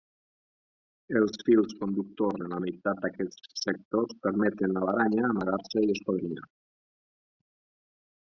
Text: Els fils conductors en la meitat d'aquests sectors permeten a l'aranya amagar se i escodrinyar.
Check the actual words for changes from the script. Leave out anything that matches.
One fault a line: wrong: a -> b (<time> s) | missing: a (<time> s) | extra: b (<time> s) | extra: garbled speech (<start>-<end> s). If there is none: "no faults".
no faults